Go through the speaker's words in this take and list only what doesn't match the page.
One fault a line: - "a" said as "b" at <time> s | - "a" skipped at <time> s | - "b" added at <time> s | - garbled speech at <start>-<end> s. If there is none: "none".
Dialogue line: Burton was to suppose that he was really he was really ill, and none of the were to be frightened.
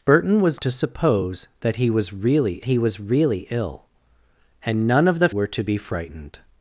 none